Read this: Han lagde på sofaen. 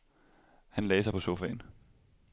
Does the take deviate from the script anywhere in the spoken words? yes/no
yes